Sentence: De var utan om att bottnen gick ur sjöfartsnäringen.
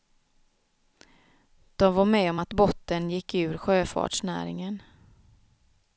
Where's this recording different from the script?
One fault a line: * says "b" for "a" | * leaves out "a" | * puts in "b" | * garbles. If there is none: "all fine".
* says "med" for "utan"